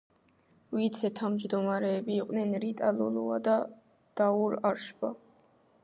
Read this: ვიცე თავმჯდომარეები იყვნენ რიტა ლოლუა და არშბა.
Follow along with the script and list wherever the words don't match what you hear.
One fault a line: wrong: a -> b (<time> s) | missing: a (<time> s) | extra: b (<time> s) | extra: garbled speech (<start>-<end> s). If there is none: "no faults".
extra: დაურ (4.2 s)